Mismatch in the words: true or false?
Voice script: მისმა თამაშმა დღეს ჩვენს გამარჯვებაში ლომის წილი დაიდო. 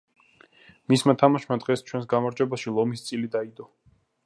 false